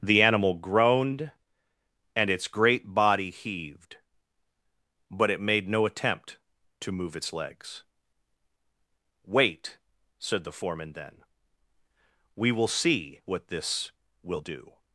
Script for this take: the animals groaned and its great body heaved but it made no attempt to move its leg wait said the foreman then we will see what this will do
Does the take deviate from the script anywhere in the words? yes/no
yes